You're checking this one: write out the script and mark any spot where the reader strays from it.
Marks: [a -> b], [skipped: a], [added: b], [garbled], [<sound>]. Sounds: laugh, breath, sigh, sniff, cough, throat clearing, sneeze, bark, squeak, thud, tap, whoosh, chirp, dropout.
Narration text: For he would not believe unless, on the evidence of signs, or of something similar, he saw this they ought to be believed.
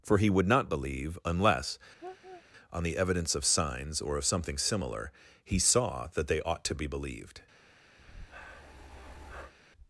For he would not believe unless, [laugh] on the evidence of signs, or of something similar, he saw [this -> that] they ought to be believed. [breath]